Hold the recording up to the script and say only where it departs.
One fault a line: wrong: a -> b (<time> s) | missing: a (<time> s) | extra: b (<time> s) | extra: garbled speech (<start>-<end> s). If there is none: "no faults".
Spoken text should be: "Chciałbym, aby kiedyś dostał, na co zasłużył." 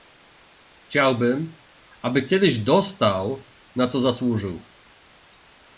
no faults